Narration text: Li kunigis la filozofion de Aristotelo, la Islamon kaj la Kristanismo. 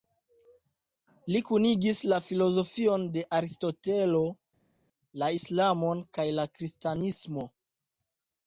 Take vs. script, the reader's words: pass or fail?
pass